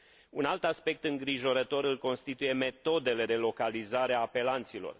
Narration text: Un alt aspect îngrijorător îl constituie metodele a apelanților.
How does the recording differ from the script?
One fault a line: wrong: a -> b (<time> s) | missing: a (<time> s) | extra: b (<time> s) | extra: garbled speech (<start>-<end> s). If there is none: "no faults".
extra: de localizare (3.2 s)